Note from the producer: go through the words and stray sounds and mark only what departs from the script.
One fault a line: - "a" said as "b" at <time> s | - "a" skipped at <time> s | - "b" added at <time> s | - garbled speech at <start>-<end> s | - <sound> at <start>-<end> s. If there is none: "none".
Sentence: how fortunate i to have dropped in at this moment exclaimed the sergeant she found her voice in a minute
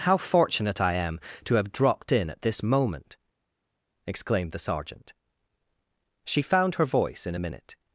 - "am" added at 0.9 s